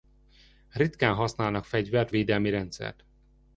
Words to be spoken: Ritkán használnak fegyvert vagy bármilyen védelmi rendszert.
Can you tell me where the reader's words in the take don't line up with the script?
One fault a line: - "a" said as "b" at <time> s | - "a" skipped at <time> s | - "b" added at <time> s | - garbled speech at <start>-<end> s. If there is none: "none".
- "vagy bármilyen" skipped at 2.1 s